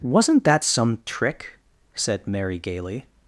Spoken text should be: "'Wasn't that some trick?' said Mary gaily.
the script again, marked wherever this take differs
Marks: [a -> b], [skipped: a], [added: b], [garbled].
"'Wasn't that some trick?' said Mary gaily.